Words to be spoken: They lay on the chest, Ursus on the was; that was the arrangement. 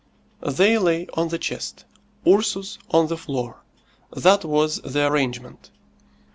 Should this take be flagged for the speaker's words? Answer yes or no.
yes